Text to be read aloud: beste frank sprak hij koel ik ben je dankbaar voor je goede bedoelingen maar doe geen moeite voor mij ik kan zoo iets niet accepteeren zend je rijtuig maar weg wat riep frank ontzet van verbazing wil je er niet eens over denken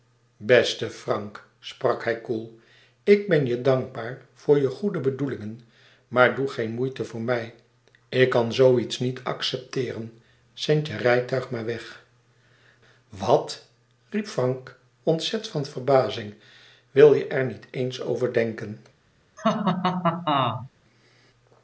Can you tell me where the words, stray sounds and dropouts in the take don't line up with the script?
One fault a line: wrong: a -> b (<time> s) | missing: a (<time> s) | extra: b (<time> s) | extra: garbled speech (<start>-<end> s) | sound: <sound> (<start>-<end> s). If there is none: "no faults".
sound: laugh (19.4-20.7 s)